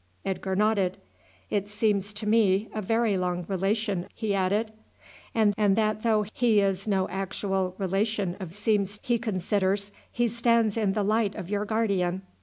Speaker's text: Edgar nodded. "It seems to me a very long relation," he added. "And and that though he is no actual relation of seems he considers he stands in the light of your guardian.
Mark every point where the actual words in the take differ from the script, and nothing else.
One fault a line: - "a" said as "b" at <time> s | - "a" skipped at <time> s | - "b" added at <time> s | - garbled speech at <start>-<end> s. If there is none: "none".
none